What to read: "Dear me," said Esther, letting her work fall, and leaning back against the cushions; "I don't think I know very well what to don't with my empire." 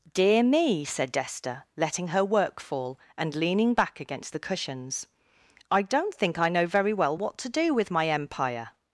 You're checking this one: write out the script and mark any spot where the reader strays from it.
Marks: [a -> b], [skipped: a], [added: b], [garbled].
"Dear me," said Esther, letting her work fall, and leaning back against the cushions; "I don't think I know very well what to [don't -> do] with my empire."